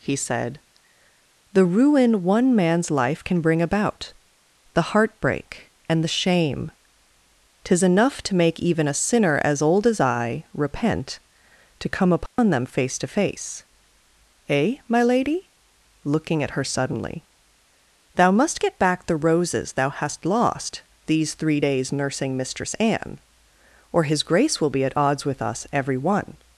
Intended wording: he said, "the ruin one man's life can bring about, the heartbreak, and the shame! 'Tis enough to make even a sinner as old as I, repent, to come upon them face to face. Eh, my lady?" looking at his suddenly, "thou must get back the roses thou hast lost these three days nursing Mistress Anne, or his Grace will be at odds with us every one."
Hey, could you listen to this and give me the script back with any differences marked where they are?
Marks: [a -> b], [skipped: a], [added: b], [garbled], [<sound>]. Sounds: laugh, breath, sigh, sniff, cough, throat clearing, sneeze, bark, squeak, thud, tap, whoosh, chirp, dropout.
he said, "the ruin one man's life can bring about, the heartbreak, and the shame! 'Tis enough to make even a sinner as old as I, repent, to come upon [dropout] them face to face. Eh, my lady?" looking at [his -> her] suddenly, "thou must get back the roses thou hast lost these three days nursing Mistress Anne, or his Grace will be at odds with us every one."